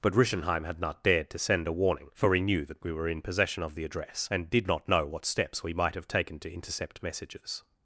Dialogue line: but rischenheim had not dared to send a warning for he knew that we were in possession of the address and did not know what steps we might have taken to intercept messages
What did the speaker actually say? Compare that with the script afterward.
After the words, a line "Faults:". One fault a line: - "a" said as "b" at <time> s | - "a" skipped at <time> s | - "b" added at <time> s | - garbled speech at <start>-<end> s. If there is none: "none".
but rischenheim had not dared to send a warning for he knew that we were in possession of the address and did not know what steps we might have taken to intercept messages
Faults:
none